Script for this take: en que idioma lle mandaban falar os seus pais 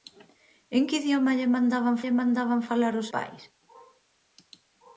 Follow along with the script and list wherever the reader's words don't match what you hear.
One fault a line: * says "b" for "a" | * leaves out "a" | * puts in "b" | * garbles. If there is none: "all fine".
* puts in "lle mandaban"
* leaves out "seus"